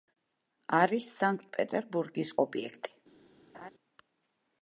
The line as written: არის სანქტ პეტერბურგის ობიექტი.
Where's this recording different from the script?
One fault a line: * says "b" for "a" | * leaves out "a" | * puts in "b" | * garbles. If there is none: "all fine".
all fine